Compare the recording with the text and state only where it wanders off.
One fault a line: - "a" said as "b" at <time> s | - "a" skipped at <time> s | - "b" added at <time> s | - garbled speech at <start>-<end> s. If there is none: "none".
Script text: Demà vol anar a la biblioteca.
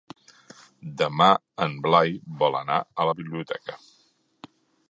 - "en Blai" added at 1.6 s